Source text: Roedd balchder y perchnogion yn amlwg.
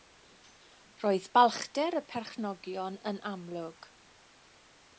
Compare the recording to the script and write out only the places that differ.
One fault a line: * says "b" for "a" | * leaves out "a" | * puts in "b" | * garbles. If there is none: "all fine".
all fine